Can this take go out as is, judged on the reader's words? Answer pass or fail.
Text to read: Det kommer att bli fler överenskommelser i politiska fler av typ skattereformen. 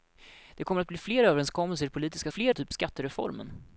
pass